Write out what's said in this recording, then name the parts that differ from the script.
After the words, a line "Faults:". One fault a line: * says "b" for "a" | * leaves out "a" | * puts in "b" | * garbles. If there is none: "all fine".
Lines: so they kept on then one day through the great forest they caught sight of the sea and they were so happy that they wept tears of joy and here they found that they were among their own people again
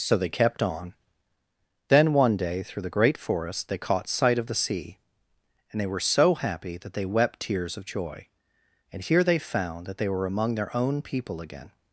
so they kept on then one day through the great forest they caught sight of the sea and they were so happy that they wept tears of joy and here they found that they were among their own people again
Faults:
all fine